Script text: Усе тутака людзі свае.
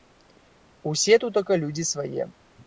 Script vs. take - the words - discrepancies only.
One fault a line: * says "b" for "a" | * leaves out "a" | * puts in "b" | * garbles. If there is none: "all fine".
all fine